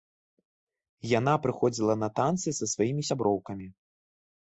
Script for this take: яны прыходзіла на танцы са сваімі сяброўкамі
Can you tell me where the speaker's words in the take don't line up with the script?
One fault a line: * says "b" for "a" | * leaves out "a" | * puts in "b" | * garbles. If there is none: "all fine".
* says "яна" for "яны"